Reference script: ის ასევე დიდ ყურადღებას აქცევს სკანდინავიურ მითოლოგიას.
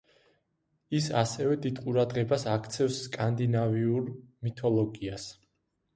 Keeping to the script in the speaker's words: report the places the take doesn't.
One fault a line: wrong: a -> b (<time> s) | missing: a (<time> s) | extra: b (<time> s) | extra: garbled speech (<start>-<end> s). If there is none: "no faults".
no faults